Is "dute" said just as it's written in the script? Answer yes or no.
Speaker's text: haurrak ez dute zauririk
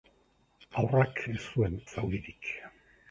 no